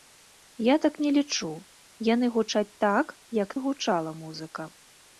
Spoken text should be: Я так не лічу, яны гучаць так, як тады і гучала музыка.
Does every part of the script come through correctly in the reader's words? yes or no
no